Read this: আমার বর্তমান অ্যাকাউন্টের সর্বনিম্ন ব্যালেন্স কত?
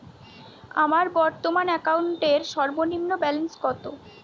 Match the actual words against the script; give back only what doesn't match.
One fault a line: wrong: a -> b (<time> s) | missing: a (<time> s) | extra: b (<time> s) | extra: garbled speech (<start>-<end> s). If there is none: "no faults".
no faults